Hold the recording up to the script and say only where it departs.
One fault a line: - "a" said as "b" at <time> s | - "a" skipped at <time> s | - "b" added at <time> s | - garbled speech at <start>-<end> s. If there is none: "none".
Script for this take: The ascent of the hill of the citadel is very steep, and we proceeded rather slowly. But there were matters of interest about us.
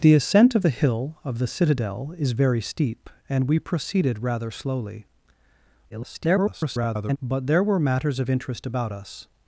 - garbled speech at 5.9-7.2 s